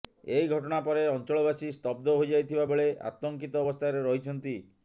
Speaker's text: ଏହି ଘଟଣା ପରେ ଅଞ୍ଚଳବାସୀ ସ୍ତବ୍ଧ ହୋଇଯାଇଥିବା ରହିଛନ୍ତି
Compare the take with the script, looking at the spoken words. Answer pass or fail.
fail